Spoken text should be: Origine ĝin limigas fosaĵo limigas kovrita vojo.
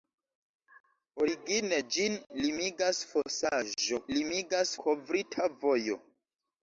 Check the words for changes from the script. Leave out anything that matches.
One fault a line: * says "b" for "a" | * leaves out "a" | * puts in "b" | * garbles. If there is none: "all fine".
all fine